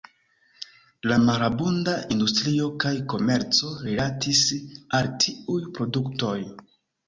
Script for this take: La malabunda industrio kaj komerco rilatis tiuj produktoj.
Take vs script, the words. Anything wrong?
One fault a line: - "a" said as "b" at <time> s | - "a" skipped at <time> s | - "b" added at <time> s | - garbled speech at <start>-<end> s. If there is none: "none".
- "al" added at 5.0 s